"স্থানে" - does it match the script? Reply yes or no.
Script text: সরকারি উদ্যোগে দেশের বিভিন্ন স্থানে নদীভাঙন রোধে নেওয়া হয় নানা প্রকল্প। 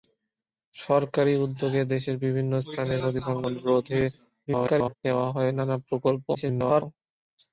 yes